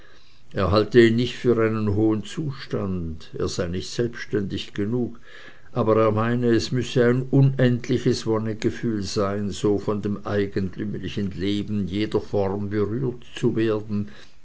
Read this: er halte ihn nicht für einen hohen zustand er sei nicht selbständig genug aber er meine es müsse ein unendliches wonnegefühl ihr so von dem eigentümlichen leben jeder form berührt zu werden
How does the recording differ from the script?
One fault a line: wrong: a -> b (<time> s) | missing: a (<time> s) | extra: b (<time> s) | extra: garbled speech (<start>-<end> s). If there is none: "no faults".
wrong: ihr -> sein (9.0 s)